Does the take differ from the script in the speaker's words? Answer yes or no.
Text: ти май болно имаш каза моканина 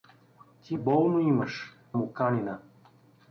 yes